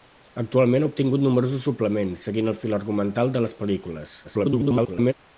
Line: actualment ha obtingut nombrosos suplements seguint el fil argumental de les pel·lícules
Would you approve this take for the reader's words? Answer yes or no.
no